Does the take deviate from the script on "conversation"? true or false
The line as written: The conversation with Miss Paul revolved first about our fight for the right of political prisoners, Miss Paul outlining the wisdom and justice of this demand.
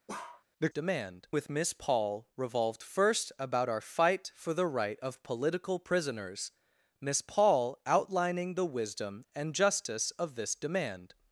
true